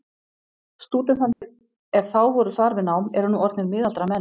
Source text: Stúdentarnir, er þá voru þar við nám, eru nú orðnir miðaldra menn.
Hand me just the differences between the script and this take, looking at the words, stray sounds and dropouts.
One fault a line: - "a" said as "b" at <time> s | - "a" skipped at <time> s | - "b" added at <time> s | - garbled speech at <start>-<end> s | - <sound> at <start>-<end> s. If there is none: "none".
- dropout at 1.3-1.4 s